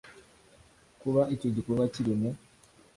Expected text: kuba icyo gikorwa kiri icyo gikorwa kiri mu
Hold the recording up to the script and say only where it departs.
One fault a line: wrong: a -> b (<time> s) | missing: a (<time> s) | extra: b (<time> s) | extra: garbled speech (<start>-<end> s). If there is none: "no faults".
missing: icyo gikorwa kiri (2.1 s)